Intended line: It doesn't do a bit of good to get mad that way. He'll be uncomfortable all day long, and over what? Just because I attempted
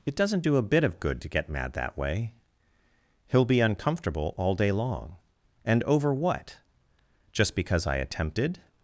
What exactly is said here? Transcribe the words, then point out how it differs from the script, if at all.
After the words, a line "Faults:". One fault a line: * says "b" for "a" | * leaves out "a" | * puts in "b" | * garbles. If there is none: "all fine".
It doesn't do a bit of good to get mad that way. He'll be uncomfortable all day long, and over what? Just because I attempted
Faults:
all fine